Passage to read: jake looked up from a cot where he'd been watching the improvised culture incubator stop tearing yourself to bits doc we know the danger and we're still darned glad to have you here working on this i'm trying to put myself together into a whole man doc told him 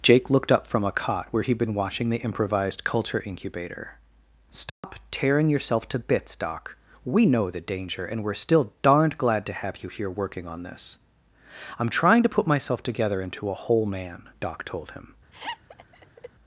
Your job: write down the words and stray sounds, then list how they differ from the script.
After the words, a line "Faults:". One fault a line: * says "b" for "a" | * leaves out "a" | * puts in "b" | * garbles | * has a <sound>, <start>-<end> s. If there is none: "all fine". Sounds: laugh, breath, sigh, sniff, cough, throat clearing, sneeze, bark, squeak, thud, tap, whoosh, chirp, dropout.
jake looked up from a cot where he'd been watching the improvised culture incubator stop tearing yourself to bits doc we know the danger and we're still darned glad to have you here working on this i'm trying to put myself together into a whole man doc told him
Faults:
* has a dropout, 4.7-4.8 s
* has a laugh, 15.3-16.3 s